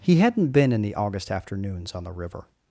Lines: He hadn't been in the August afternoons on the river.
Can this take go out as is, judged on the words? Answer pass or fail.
pass